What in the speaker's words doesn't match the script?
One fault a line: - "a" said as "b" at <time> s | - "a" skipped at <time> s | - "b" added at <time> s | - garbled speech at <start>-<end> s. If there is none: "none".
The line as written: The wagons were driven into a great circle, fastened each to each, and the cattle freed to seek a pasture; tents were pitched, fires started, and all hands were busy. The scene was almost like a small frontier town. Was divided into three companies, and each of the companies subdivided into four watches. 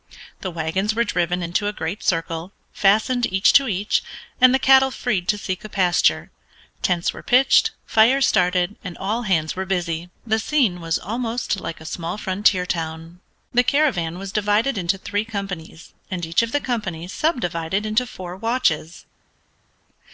- "The caravan" added at 13.5 s